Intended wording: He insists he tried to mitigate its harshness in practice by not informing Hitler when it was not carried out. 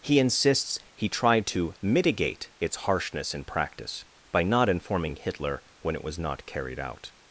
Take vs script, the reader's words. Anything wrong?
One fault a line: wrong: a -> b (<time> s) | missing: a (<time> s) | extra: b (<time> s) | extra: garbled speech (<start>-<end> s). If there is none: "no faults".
no faults